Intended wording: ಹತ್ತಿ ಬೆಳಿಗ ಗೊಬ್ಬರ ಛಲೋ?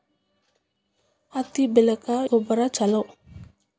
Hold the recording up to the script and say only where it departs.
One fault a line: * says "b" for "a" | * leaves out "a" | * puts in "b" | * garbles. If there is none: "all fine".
all fine